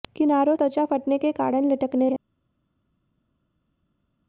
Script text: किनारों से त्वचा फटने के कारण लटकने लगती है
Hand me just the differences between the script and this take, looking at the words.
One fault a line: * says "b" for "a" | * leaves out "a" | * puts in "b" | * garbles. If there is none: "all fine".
* leaves out "से"
* leaves out "लगती"